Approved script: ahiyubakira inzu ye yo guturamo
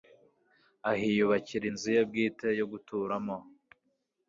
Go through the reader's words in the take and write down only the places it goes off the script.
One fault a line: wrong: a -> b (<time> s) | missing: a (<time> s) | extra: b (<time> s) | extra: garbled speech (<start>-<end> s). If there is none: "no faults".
extra: bwite (2.1 s)